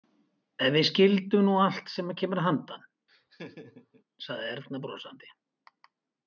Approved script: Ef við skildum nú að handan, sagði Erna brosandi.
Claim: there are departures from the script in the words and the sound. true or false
true